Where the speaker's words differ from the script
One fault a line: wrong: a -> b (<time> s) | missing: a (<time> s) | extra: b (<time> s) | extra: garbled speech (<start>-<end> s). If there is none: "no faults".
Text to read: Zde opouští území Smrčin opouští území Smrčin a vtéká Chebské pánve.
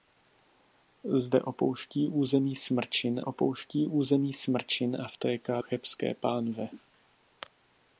no faults